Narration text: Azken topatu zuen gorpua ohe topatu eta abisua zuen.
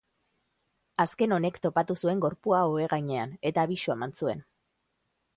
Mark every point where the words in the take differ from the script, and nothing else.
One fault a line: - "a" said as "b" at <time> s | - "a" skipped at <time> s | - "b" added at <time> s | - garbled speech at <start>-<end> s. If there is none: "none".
- "honek" added at 1.4 s
- "topatu" said as "gainean" at 2.9 s
- "eman" added at 4.0 s